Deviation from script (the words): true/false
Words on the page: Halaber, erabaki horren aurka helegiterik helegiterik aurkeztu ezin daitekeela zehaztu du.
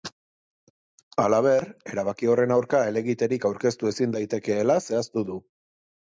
true